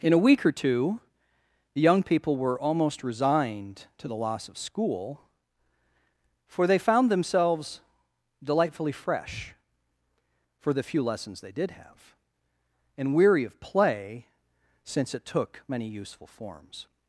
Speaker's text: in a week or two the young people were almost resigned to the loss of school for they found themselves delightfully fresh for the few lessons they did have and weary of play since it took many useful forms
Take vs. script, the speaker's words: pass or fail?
pass